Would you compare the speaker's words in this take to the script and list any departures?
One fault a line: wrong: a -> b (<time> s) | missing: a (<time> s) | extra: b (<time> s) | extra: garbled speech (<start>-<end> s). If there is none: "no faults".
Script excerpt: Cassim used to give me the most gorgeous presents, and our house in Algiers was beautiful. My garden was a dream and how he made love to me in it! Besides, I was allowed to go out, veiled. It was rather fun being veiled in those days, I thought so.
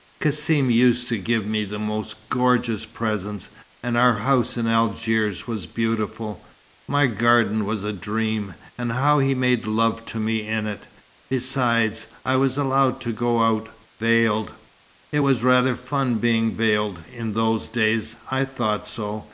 no faults